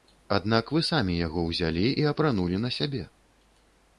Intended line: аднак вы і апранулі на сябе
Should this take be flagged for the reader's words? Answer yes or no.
yes